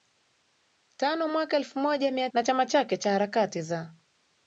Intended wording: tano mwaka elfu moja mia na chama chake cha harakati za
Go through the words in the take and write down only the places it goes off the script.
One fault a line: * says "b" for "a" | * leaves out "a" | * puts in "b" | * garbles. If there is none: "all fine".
all fine